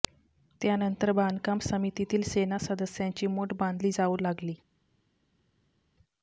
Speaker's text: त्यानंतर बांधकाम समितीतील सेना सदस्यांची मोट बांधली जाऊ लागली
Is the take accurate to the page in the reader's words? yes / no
yes